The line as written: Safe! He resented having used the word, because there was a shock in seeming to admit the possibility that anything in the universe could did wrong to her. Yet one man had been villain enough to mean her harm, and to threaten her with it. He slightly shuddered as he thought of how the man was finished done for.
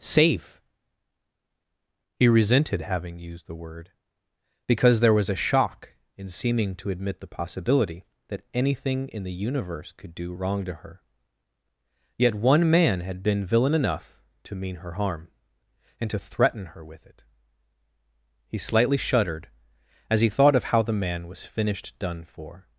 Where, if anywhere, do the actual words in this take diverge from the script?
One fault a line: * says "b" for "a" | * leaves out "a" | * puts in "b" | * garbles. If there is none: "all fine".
* says "do" for "did"